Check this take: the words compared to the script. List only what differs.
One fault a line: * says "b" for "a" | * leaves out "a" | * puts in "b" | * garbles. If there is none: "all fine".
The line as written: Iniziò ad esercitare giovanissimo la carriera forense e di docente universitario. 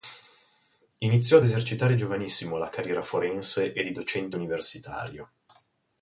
all fine